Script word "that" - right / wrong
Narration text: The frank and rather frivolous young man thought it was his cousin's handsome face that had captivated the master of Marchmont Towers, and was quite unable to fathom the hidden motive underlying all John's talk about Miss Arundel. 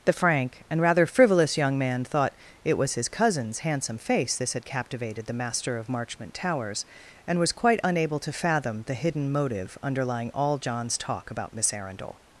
wrong